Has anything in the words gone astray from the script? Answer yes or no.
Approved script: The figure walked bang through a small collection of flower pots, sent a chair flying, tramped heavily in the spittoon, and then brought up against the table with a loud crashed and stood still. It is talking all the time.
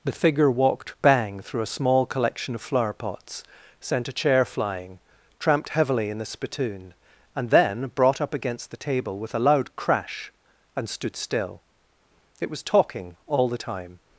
yes